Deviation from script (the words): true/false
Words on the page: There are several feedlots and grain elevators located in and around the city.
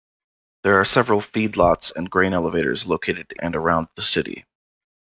true